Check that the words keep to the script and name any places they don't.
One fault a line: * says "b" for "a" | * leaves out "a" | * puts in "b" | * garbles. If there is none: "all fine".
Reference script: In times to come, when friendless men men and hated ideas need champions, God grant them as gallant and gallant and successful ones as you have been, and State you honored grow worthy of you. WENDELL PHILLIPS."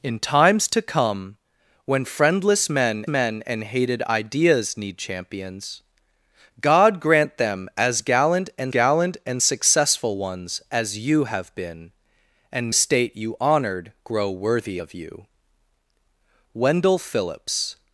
all fine